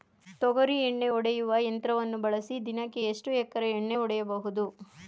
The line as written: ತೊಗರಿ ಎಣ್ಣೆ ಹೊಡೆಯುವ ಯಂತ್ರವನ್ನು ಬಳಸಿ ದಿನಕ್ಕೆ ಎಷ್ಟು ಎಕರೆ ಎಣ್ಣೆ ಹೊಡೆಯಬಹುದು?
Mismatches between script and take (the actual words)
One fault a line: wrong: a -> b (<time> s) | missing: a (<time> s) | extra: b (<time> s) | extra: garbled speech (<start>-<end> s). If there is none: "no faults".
no faults